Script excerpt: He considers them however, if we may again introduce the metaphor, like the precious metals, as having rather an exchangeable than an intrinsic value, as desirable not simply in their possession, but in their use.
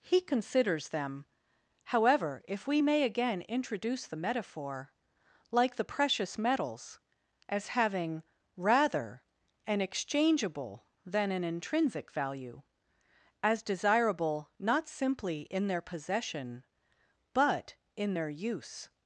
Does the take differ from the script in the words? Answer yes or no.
no